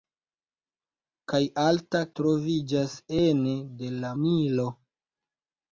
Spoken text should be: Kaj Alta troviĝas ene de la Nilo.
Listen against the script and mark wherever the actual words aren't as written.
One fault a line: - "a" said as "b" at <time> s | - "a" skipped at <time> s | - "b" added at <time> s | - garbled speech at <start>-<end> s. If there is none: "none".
none